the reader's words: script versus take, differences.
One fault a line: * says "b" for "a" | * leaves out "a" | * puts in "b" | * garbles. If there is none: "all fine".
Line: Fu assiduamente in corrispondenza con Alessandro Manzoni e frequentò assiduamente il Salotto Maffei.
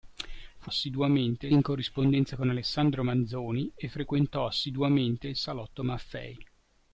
all fine